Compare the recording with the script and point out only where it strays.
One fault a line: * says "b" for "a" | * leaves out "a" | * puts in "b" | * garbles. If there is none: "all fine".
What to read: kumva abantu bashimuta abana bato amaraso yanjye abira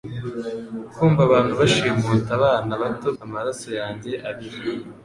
all fine